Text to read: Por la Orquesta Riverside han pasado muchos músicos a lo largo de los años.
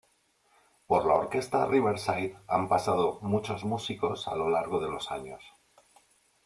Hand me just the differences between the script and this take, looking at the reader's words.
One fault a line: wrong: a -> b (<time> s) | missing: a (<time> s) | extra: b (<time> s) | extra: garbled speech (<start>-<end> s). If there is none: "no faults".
no faults